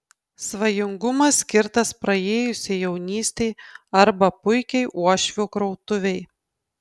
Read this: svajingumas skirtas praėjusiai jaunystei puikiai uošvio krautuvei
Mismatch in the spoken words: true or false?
true